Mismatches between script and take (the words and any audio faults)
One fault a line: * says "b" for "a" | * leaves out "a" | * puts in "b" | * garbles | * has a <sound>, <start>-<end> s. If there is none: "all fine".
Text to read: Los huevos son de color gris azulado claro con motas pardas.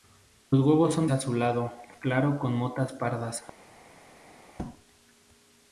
* leaves out "de color gris"